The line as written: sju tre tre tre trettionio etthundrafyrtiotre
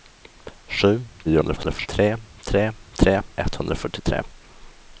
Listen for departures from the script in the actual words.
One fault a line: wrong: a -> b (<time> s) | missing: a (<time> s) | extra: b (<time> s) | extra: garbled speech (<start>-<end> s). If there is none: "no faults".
extra: garbled speech (1.2-1.9 s)
missing: trettionio (3.2 s)